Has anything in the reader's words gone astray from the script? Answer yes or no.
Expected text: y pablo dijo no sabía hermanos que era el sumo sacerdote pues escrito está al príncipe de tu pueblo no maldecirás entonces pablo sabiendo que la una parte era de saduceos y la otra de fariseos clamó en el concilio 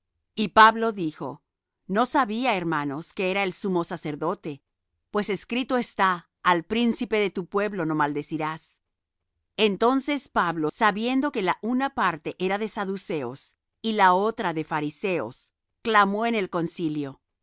no